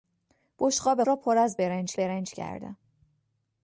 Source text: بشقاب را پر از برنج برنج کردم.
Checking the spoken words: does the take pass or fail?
pass